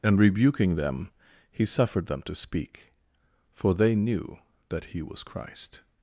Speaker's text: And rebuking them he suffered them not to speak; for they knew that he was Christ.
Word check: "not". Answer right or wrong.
wrong